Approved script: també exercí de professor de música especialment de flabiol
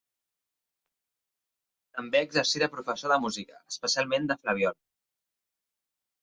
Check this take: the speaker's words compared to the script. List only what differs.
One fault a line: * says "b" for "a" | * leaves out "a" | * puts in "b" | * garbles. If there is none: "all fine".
all fine